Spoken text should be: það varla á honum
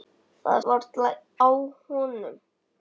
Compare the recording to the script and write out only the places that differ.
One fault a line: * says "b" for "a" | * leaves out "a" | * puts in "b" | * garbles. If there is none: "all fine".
all fine